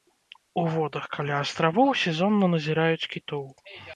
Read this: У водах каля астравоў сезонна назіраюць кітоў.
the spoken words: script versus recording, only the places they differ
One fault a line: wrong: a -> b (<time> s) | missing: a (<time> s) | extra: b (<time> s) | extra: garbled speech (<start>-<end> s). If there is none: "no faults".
no faults